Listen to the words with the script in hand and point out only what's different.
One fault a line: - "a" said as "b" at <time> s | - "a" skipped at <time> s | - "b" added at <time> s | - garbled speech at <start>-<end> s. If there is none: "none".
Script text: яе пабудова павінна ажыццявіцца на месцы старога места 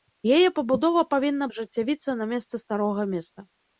none